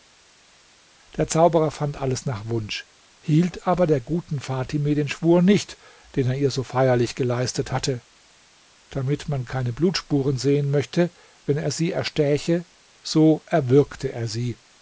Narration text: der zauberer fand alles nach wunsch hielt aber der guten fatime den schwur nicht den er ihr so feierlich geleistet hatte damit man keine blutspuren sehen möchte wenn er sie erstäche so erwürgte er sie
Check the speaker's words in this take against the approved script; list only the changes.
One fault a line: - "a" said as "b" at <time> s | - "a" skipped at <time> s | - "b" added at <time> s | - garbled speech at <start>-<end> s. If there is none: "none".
none